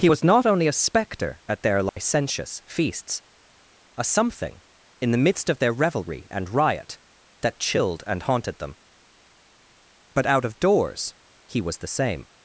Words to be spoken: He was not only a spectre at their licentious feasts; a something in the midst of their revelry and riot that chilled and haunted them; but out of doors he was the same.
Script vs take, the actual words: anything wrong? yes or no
no